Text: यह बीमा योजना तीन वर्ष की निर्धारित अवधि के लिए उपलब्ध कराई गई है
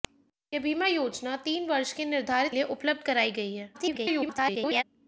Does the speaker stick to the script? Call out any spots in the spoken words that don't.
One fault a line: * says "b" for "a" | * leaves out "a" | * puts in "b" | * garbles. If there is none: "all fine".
* leaves out "अवधि के"
* garbles